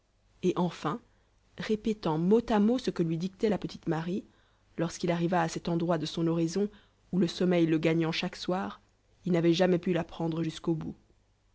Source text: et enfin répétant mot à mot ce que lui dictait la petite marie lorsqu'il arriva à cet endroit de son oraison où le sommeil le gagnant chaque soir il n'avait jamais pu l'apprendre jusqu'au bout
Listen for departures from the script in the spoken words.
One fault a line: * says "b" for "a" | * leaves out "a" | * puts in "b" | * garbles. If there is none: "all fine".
all fine